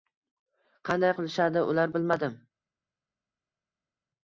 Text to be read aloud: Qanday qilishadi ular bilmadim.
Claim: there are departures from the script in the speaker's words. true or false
false